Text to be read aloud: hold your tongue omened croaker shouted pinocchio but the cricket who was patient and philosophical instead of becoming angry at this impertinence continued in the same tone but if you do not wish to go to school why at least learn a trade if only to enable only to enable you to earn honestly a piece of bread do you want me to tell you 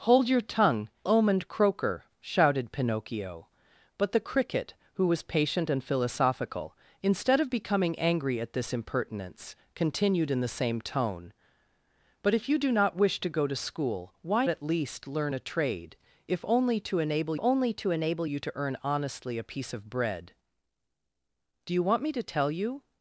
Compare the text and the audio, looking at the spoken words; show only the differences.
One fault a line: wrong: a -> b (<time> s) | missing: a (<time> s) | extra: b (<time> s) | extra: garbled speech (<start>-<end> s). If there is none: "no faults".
no faults